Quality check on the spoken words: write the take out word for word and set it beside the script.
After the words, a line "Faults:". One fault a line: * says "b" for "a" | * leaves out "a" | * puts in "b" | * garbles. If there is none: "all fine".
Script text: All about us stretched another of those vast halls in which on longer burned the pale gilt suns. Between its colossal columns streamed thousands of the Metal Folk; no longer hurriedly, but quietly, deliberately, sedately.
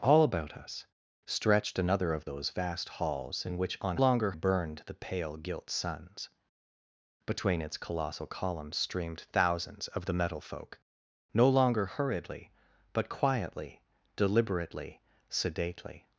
All about us stretched another of those vast halls in which on longer burned the pale gilt suns. Between its colossal columns streamed thousands of the Metal Folk; no longer hurriedly, but quietly, deliberately, sedately.
Faults:
all fine